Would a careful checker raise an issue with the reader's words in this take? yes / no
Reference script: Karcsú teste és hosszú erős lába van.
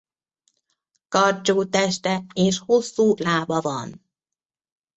yes